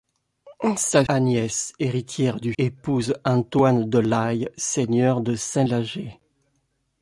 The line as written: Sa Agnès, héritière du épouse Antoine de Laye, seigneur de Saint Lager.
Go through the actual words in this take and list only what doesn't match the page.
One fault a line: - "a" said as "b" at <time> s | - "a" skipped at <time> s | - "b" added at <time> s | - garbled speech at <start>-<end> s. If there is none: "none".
none